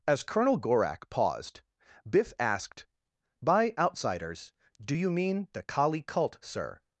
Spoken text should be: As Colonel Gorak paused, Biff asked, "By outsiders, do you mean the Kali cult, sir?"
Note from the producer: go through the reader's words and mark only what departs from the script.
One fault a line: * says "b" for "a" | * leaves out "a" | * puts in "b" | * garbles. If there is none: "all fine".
all fine